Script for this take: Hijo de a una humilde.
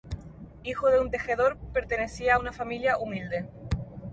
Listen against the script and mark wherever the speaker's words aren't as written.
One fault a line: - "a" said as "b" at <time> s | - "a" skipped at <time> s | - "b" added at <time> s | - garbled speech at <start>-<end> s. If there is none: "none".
- "un tejedor pertenecía" added at 1.0 s
- "familia" added at 2.5 s